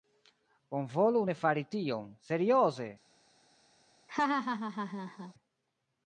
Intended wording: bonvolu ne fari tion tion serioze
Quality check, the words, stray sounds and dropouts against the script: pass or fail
fail